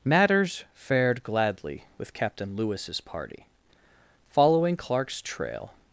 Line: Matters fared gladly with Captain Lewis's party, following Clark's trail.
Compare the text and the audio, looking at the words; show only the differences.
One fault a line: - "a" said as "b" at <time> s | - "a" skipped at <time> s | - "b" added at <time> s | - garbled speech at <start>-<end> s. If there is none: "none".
none